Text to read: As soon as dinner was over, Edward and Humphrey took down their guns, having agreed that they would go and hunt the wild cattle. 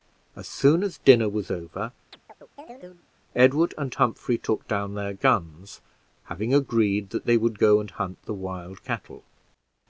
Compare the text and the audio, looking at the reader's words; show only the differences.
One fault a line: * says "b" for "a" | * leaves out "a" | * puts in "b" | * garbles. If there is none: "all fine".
all fine